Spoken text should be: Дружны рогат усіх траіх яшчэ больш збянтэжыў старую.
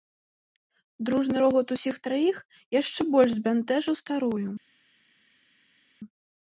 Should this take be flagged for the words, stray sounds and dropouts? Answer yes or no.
no